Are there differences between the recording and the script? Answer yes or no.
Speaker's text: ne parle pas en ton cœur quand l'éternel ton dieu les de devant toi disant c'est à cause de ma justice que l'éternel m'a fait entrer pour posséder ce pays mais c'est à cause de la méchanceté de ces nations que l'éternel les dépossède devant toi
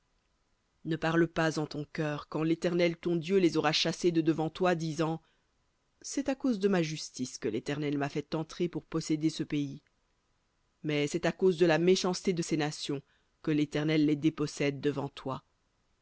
yes